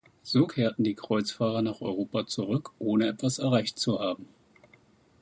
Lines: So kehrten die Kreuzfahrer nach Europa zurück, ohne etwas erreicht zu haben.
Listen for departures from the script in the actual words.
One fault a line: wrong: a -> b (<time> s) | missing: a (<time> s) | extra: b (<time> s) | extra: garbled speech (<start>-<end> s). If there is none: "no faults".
no faults